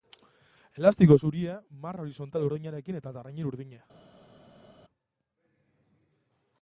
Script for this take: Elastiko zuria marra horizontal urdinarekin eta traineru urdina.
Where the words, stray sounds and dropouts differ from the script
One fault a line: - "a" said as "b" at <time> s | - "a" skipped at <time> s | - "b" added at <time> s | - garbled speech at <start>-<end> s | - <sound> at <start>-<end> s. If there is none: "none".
none